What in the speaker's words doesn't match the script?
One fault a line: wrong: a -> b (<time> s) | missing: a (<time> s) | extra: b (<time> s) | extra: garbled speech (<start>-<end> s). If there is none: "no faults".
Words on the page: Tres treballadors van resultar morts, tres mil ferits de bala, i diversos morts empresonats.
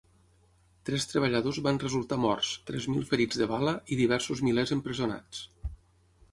wrong: morts -> milers (4.5 s)